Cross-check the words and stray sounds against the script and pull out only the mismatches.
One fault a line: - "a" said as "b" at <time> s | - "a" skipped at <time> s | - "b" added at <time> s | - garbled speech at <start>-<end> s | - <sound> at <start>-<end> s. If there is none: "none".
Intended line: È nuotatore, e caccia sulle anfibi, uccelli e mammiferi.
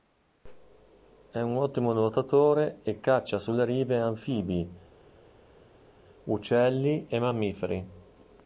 - "un ottimo" added at 1.4 s
- "rive" added at 3.6 s